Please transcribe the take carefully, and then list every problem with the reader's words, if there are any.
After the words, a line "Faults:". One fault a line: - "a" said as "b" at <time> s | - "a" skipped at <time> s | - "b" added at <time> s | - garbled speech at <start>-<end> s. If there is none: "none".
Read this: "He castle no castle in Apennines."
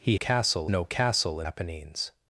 "He castle no castle in Apennines."
Faults:
none